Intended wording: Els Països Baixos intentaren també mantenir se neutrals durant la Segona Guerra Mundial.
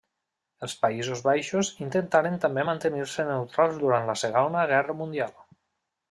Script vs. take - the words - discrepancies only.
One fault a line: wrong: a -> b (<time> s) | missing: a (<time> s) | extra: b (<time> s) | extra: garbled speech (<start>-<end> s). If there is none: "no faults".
no faults